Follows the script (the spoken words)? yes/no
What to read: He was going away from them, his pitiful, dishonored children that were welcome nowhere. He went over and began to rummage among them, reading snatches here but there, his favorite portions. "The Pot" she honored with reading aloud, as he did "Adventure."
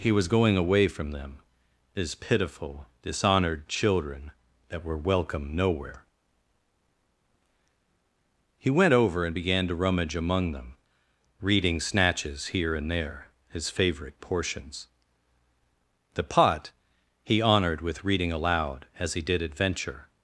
no